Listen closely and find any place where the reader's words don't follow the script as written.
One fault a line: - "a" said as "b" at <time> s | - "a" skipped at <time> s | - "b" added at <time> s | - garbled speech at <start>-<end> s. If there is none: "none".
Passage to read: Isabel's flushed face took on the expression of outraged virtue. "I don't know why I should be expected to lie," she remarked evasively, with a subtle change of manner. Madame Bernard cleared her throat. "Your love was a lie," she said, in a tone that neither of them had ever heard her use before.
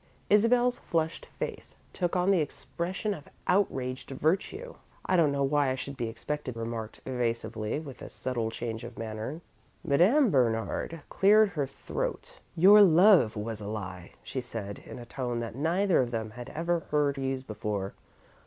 - "to lie she" skipped at 6.5 s
- "her" skipped at 17.2 s